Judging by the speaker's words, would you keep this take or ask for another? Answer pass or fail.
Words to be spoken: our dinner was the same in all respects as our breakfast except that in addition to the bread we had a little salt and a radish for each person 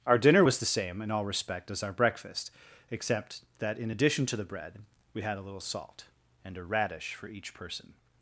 fail